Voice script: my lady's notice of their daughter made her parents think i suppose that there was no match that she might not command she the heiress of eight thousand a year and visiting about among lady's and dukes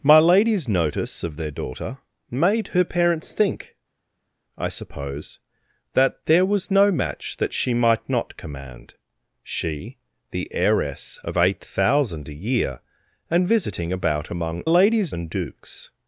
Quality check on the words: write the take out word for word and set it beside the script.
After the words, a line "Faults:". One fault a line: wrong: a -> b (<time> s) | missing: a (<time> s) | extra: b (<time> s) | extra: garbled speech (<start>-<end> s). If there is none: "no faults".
my lady's notice of their daughter made her parents think i suppose that there was no match that she might not command she the heiress of eight thousand a year and visiting about among lady's and dukes
Faults:
no faults